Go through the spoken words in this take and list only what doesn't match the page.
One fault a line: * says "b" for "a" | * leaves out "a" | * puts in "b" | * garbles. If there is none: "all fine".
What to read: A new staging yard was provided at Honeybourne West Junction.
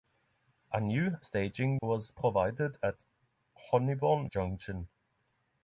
* leaves out "yard"
* leaves out "West"